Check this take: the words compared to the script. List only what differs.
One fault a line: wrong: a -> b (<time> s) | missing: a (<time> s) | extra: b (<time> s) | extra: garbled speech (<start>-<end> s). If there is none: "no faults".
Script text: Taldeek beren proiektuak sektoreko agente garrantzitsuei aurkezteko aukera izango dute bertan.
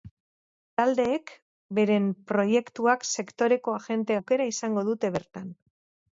missing: garrantzitsuei aurkezteko (4.2 s)